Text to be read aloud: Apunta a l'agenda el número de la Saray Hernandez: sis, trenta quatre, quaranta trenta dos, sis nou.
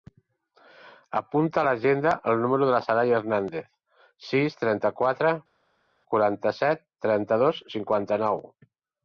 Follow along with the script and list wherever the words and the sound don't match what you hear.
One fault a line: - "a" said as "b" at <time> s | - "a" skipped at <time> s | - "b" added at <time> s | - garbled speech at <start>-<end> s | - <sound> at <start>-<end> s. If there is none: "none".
- "set" added at 6.7 s
- "sis" said as "cinquanta" at 7.8 s